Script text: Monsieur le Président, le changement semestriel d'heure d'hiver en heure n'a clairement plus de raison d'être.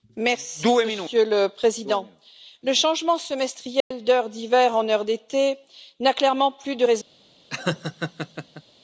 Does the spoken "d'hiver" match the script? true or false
true